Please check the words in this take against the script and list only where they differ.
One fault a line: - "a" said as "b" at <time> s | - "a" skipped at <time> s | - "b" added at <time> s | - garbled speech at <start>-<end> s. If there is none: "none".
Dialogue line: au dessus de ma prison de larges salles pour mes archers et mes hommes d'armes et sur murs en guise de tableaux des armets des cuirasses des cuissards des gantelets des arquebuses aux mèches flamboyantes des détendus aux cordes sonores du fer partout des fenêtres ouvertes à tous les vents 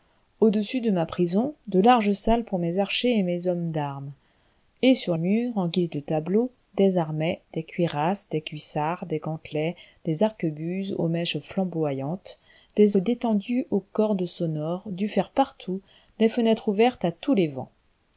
none